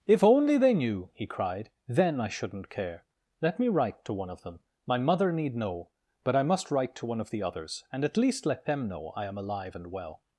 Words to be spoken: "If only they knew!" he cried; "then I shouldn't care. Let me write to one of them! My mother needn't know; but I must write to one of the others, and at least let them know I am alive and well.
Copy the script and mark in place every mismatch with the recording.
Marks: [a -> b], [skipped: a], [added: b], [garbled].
"If only they knew!" he cried; "then I shouldn't care. Let me write to one of them! My mother [needn't -> need] know; but I must write to one of the others, and at least let them know I am alive and well.